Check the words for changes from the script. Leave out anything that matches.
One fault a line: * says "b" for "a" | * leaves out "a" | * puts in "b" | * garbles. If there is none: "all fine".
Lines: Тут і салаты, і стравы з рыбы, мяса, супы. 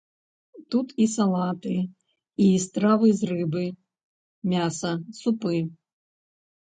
all fine